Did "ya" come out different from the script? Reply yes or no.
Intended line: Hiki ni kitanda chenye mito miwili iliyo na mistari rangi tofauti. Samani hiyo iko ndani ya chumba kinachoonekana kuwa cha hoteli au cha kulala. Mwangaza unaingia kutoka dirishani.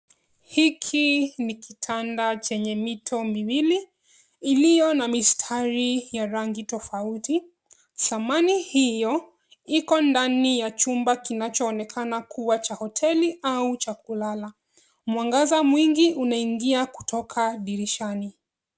no